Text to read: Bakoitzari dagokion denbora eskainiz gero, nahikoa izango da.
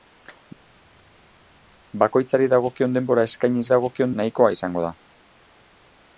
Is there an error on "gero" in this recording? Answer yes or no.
yes